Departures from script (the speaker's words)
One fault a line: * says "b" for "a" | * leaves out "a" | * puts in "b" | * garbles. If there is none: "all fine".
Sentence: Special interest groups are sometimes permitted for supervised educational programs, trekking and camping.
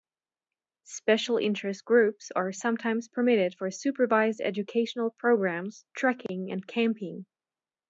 all fine